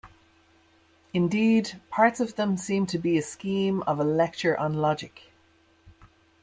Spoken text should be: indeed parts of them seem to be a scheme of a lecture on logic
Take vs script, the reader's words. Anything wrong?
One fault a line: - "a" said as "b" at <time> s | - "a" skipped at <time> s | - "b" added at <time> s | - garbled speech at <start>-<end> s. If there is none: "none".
none